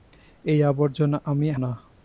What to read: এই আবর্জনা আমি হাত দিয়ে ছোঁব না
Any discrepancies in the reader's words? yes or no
yes